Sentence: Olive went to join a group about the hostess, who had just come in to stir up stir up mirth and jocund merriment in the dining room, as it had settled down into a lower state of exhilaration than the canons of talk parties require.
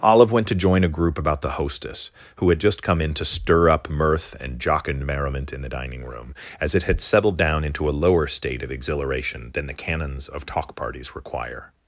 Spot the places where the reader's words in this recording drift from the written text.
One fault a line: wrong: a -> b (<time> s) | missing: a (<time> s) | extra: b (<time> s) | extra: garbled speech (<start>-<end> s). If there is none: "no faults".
missing: stir up (3.9 s)